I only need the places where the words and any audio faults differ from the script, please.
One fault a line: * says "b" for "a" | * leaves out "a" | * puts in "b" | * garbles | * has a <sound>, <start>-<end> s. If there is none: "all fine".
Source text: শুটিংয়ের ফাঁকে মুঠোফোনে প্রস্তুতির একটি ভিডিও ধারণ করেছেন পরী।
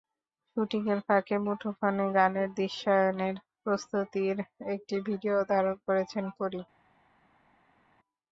* puts in "গানের দৃশ্যায়নের"